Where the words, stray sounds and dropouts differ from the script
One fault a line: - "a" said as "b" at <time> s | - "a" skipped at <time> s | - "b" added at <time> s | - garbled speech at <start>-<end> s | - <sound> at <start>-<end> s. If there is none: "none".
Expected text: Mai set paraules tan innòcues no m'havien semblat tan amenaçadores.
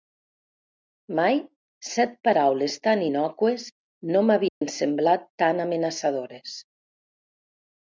- dropout at 4.5-4.6 s